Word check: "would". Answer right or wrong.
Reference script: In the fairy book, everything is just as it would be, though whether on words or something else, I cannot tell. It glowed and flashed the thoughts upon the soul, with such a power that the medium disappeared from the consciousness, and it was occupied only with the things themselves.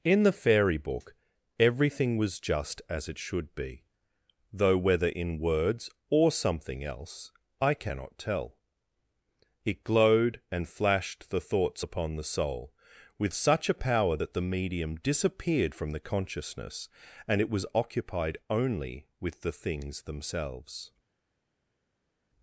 wrong